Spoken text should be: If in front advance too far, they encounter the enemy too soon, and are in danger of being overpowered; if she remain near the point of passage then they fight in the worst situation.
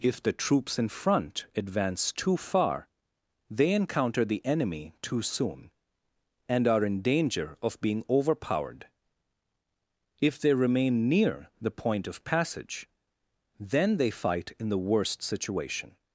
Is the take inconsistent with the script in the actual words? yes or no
yes